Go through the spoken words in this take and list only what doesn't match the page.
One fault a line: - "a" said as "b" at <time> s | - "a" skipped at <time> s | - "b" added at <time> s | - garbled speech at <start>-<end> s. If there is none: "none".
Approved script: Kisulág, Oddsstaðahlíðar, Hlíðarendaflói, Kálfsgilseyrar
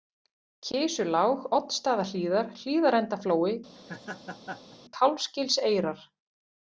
none